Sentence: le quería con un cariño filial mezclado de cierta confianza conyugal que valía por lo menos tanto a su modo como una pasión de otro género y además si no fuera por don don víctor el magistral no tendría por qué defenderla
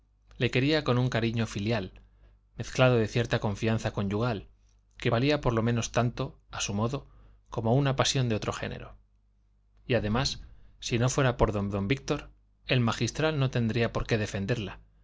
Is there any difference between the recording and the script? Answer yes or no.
no